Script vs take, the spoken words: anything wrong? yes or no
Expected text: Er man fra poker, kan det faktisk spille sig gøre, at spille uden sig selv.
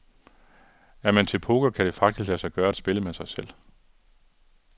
yes